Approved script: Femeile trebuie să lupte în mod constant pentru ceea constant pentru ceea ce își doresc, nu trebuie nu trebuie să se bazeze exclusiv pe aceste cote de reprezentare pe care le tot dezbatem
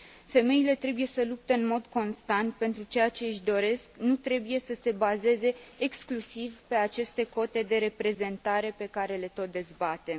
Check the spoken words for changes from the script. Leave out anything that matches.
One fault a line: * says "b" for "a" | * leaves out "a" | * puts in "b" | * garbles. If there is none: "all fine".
* leaves out "constant pentru ceea"
* leaves out "nu trebuie"